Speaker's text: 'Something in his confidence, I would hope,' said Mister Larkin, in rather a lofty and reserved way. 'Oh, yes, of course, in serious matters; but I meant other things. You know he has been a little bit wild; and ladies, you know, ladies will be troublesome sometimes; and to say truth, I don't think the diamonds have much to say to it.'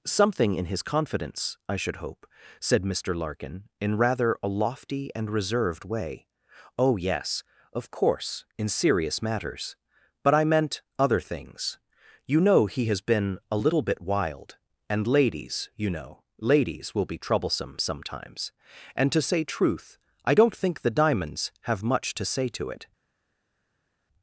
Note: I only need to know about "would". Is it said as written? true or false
false